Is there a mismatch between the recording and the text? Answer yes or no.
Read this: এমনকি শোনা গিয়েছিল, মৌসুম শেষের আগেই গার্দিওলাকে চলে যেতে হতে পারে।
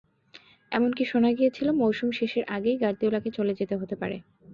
no